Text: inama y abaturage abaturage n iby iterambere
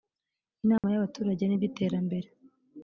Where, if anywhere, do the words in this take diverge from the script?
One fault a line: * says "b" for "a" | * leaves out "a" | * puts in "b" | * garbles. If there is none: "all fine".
* leaves out "abaturage"